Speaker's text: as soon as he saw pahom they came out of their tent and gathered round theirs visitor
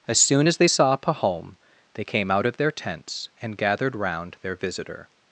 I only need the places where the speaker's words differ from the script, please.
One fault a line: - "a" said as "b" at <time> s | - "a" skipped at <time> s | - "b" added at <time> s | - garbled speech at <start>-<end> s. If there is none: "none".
- "he" said as "they" at 0.6 s
- "tent" said as "tents" at 2.7 s
- "theirs" said as "their" at 4.4 s